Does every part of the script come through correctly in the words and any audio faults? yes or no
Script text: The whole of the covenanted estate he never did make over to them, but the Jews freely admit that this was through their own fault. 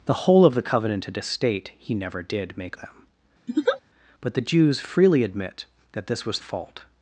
no